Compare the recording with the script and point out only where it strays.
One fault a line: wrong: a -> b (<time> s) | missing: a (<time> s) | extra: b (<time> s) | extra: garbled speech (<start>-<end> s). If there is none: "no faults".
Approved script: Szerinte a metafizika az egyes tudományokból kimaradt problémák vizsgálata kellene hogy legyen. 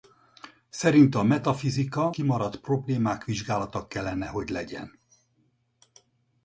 missing: az egyes tudományokból (2.1 s)